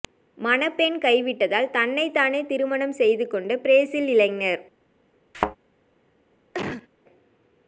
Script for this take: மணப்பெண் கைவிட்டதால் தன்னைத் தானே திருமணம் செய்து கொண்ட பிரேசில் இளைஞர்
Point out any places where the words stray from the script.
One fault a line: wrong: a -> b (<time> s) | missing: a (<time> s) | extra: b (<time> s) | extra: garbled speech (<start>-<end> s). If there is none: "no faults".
no faults